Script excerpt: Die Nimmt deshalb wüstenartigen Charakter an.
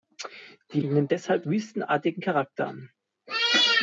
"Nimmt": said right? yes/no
yes